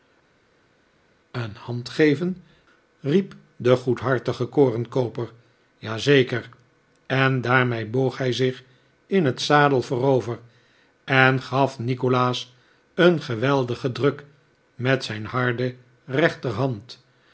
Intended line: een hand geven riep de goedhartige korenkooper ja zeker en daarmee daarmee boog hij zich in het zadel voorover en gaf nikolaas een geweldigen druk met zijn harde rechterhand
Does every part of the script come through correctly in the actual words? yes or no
no